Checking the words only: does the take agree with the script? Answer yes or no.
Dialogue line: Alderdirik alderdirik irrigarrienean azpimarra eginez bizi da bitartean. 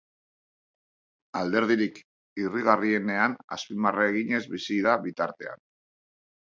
no